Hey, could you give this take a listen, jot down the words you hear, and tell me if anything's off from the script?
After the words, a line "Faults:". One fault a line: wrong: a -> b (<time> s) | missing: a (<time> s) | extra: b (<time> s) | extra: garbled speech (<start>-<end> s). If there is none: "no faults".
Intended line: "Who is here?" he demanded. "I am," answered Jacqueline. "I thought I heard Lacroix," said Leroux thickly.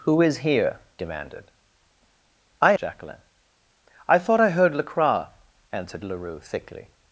"Who is here?" demanded. "I Jacqueline. "I thought I heard Lacroix," answered Leroux thickly.
Faults:
missing: he (0.8 s)
missing: am answered (2.7 s)
wrong: said -> answered (5.7 s)